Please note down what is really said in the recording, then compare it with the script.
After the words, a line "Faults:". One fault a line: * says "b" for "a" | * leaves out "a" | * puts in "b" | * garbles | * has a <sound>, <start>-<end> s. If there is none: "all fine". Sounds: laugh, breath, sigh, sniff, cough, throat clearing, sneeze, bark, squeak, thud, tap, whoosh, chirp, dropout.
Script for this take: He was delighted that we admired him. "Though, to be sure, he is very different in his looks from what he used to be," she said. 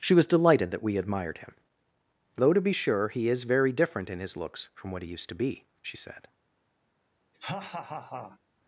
She was delighted that we admired him. "Though, to be sure, he is very different in his looks from what he used to be," she said.
Faults:
* says "She" for "He"
* has a laugh, 7.3-8.4 s